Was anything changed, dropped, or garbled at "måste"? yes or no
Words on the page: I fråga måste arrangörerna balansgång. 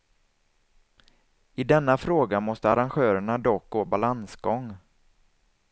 no